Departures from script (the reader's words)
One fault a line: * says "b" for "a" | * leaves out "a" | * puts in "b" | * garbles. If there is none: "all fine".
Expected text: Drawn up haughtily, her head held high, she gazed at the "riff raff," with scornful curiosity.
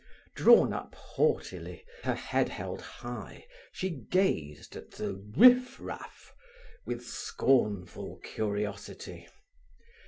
all fine